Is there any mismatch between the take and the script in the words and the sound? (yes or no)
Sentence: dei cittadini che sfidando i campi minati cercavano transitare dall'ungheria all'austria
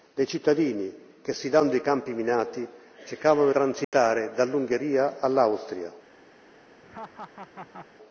yes